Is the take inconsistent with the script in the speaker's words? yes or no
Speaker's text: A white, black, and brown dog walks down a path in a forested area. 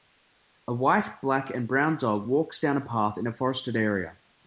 no